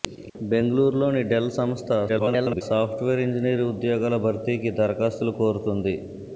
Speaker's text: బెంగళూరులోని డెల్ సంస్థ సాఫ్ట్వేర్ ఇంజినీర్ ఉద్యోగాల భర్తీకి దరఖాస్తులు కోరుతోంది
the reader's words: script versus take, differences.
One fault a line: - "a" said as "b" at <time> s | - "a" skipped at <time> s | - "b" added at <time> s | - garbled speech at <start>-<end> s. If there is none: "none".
- garbled speech at 2.1-2.6 s